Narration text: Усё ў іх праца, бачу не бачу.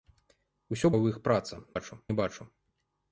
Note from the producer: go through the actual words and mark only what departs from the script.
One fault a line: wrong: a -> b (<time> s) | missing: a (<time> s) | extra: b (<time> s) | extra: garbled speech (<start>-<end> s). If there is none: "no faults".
no faults